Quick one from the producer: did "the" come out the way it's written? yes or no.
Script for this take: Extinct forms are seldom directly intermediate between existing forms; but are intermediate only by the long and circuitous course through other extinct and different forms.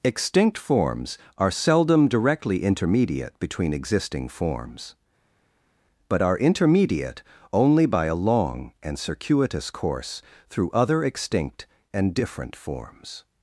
no